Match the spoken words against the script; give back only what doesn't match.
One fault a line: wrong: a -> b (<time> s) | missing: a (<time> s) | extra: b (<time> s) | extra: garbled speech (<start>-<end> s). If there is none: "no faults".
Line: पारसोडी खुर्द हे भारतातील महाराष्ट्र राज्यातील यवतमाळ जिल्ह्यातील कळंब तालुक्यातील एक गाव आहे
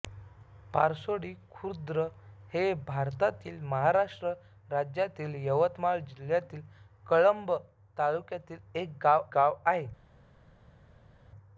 extra: गाव (9.3 s)